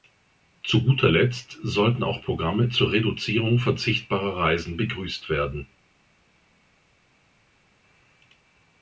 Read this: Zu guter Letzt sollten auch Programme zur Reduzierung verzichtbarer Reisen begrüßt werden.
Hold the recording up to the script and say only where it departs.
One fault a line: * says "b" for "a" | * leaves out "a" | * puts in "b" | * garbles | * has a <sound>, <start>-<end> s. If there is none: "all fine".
all fine